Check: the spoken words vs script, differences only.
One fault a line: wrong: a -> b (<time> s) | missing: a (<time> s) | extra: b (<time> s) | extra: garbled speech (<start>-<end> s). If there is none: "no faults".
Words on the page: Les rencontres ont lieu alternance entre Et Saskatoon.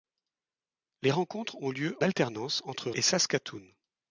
no faults